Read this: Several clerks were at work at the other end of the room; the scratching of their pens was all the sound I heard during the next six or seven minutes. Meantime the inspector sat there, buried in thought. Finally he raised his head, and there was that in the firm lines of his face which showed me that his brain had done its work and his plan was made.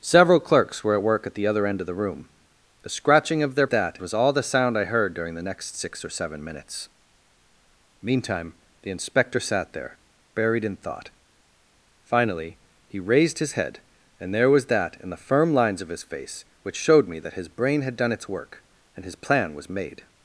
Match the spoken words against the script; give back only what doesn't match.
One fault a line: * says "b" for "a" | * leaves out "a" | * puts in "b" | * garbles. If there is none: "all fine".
* says "that" for "pens"